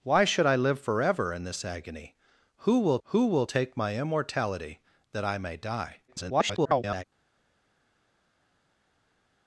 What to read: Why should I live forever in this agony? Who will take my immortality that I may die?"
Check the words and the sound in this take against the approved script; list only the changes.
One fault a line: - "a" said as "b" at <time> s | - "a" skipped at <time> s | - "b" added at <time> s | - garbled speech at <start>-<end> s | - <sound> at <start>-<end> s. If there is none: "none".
- "who will" added at 3.1 s
- garbled speech at 6.1-7.0 s